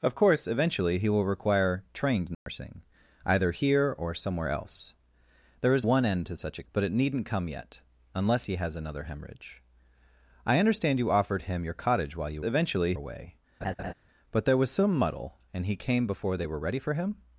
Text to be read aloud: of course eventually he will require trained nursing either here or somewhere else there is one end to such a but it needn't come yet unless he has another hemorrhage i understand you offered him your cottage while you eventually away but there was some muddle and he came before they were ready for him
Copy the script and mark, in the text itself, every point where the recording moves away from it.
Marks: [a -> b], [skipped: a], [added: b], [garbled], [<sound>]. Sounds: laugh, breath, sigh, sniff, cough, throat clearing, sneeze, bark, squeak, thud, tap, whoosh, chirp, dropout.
of course eventually he will require trained nursing [dropout] either here or somewhere else there is one end to such a but it needn't come yet unless he has another hemorrhage i understand you offered him your cottage while you eventually away [laugh] but there was some muddle and he came before they were ready for him